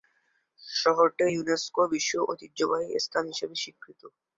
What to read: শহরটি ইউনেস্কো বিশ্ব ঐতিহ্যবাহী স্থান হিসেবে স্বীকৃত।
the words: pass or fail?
pass